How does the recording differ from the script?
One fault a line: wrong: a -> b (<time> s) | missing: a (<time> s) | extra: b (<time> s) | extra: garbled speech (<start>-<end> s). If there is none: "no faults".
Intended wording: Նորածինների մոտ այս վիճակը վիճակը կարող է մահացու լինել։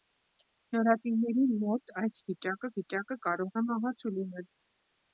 no faults